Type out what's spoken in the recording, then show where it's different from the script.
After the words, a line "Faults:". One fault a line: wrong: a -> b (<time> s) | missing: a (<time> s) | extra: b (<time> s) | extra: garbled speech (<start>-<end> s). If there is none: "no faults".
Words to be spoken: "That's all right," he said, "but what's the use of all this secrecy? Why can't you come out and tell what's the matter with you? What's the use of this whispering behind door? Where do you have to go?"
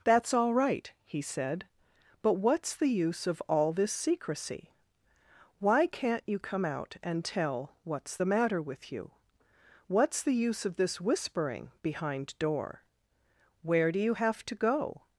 "That's all right," he said, "but what's the use of all this secrecy? Why can't you come out and tell what's the matter with you? What's the use of this whispering behind door? Where do you have to go?"
Faults:
no faults